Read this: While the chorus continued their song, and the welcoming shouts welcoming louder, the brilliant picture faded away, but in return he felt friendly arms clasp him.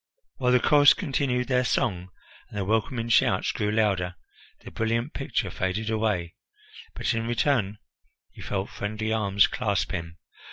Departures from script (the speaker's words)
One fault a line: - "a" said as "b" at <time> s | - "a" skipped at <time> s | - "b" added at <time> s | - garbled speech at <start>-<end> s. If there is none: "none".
- "welcoming" said as "grew" at 3.5 s